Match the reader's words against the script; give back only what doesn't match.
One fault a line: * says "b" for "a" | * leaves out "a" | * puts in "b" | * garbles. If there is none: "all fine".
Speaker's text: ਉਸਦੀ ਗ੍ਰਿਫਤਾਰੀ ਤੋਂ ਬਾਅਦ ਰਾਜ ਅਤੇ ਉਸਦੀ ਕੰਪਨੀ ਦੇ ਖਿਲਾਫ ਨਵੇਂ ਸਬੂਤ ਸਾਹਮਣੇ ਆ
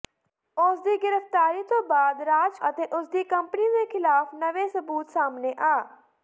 all fine